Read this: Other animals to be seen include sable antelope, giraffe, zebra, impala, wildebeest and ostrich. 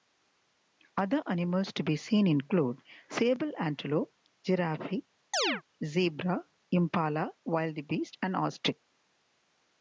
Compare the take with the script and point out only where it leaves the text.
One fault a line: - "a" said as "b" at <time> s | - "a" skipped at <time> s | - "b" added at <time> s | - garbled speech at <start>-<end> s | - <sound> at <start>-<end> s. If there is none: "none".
- chirp at 5.3-5.6 s